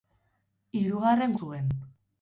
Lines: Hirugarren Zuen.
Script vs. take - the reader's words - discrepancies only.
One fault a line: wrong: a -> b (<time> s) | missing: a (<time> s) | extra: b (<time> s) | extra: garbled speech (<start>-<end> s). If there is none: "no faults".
no faults